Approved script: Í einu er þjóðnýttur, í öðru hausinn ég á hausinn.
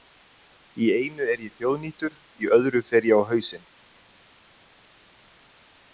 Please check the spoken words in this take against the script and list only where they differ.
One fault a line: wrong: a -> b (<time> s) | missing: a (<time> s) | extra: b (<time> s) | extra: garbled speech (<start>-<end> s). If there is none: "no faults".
extra: ég (1.4 s)
wrong: hausinn -> fer (2.9 s)